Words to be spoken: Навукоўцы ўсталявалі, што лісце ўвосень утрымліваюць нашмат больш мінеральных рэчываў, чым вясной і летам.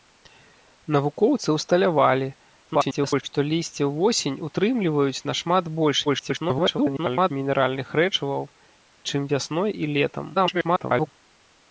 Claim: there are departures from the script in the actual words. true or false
true